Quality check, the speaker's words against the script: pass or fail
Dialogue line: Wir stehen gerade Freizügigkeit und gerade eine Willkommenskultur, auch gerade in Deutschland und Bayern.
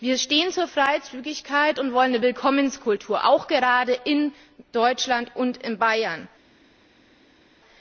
fail